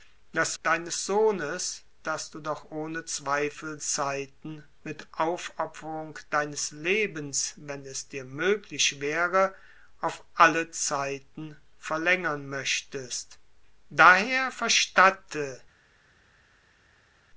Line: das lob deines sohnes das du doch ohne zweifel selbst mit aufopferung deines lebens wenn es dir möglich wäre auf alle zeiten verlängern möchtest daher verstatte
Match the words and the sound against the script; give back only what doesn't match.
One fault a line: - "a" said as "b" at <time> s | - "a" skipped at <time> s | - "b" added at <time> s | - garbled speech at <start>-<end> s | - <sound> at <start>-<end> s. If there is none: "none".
- "lob" skipped at 0.6 s
- "selbst" said as "zeiten" at 3.8 s